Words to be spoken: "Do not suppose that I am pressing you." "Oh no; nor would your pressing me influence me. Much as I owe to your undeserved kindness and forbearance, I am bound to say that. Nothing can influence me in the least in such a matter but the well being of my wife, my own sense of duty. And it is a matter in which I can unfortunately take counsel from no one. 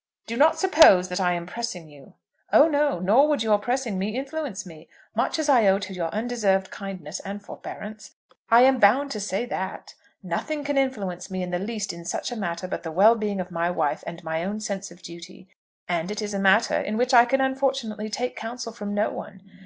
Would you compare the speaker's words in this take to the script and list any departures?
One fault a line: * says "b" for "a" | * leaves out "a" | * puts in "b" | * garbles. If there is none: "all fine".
* puts in "and"